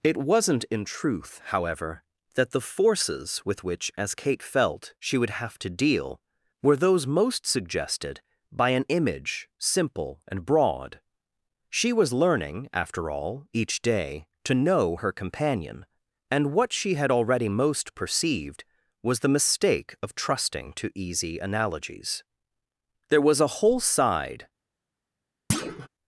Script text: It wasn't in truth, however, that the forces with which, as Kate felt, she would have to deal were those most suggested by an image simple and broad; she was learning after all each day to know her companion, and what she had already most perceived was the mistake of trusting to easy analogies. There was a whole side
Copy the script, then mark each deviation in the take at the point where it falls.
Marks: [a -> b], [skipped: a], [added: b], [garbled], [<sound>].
It wasn't in truth, however, that the forces with which, as Kate felt, she would have to deal were those most suggested by an image simple and broad; she was learning after all each day to know her companion, and what she had already most perceived was the mistake of trusting to easy analogies. There was a whole side [thud]